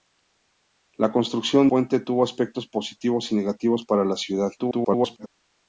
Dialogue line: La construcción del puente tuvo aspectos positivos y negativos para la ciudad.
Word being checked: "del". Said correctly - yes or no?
no